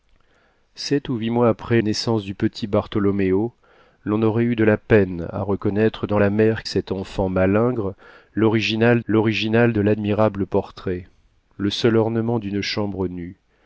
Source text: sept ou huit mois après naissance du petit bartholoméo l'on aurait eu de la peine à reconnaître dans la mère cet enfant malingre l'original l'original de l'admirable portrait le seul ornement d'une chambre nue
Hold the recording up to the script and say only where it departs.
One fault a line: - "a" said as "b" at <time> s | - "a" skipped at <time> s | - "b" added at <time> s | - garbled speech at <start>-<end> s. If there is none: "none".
none